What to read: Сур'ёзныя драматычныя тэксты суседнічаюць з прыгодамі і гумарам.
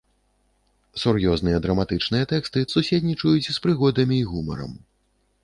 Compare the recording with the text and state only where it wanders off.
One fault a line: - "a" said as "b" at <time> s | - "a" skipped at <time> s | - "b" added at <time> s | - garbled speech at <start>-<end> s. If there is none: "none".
none